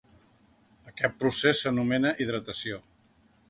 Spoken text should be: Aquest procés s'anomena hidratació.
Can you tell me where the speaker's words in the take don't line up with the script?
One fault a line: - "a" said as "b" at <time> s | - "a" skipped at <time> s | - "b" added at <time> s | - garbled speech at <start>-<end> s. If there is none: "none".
none